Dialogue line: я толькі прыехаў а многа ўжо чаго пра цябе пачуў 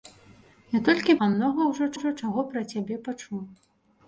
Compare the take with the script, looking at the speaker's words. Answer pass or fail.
fail